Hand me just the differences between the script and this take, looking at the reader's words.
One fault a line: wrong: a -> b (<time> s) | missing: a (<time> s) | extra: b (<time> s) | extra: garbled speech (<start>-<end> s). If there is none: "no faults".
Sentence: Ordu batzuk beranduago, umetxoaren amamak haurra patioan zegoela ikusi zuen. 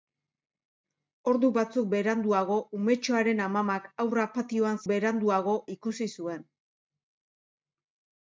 wrong: zegoela -> beranduago (4.9 s)